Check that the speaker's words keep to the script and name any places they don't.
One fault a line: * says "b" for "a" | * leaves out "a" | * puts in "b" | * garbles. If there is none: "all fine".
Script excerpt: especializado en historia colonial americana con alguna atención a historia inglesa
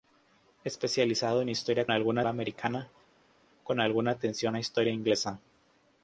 * says "alguna" for "colonial"